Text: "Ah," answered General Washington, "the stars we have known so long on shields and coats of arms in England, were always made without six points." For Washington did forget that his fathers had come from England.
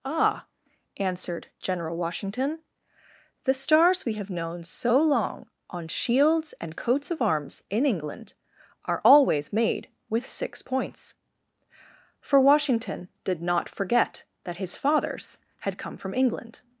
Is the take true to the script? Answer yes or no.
no